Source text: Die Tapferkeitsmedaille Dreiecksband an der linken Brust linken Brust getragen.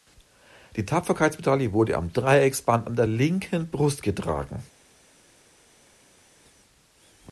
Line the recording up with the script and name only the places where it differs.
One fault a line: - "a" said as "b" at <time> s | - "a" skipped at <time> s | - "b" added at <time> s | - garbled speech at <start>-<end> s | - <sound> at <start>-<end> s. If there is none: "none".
- "wurde am" added at 1.7 s
- "linken Brust" skipped at 4.0 s